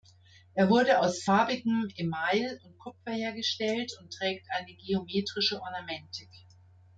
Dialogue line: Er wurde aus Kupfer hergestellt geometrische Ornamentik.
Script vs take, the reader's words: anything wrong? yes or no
yes